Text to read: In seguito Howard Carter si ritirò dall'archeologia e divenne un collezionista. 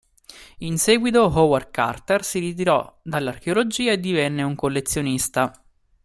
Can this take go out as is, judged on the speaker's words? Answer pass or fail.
pass